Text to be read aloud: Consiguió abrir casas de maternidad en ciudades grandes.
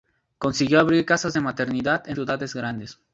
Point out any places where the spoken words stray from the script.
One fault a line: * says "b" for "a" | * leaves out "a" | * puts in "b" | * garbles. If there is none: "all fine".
all fine